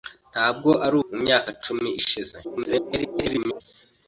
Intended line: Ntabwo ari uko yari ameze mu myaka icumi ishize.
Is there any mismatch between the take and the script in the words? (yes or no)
yes